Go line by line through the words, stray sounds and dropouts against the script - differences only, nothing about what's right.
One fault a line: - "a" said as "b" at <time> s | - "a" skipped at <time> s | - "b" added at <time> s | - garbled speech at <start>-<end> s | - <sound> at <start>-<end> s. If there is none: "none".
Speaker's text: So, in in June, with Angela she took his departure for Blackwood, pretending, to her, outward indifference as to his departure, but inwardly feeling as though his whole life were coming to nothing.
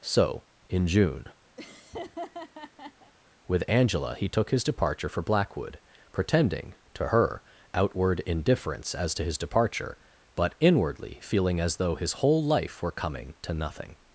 - "in" skipped at 0.9 s
- laugh at 1.6-3.1 s
- "she" said as "he" at 4.1 s